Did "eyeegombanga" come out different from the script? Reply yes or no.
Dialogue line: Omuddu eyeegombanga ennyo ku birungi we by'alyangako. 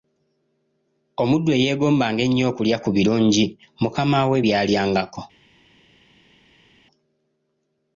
no